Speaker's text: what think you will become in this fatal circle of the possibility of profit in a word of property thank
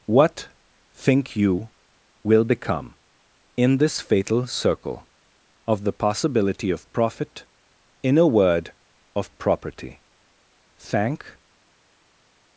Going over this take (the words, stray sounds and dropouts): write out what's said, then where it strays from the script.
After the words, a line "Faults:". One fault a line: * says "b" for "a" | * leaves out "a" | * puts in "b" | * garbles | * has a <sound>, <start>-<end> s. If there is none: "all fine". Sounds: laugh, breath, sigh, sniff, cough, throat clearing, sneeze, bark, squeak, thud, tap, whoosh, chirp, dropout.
what think you will become in this fatal circle of the possibility of profit in a word of property thank
Faults:
all fine